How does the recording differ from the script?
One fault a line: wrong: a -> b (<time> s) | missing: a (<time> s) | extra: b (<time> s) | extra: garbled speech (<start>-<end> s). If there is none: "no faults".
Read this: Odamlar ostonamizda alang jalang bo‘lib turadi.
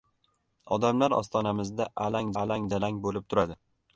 extra: alang (2.4 s)